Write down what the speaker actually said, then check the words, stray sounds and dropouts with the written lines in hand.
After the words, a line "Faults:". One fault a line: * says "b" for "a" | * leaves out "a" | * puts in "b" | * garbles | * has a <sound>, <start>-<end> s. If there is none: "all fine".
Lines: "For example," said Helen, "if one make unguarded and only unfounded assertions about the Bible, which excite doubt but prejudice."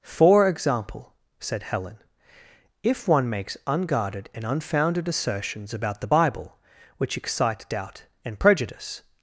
"For example," said Helen, "if one makes unguarded and unfounded assertions about the Bible, which excite doubt and prejudice."
Faults:
* says "makes" for "make"
* leaves out "only"
* says "and" for "but"